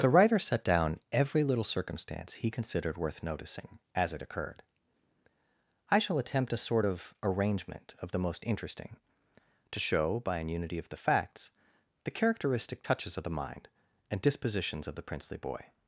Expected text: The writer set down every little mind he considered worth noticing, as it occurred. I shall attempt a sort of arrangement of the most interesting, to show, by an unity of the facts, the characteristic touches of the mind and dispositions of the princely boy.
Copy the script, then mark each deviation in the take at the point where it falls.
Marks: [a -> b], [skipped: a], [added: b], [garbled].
The writer set down every little [mind -> circumstance] he considered worth noticing, as it occurred. I shall attempt a sort of arrangement of the most interesting, to show, by an unity of the facts, the characteristic touches of the mind and dispositions of the princely boy.